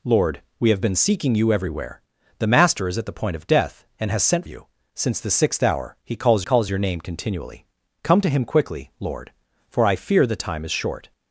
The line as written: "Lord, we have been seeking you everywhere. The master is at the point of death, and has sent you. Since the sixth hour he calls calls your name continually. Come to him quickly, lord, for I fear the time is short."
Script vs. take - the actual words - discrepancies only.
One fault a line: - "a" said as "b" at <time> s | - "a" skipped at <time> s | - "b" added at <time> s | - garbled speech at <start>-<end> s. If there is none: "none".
none